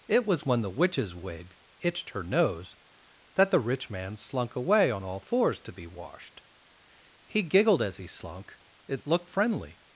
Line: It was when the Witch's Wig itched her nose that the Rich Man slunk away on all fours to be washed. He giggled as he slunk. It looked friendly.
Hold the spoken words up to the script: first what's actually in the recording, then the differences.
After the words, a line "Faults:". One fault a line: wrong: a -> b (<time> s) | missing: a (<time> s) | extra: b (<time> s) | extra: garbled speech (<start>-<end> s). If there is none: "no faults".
It was when the Witch's Wig itched her nose that the Rich Man slunk away on all fours to be washed. He giggled as he slunk. It looked friendly.
Faults:
no faults